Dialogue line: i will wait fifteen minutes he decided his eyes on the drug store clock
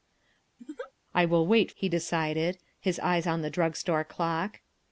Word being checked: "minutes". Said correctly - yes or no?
no